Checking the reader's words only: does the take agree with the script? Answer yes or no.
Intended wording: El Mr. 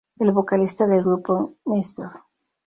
no